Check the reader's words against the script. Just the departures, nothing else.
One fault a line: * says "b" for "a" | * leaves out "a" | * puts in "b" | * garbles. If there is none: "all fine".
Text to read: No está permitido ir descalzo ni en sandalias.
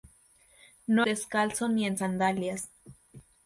* leaves out "está permitido ir"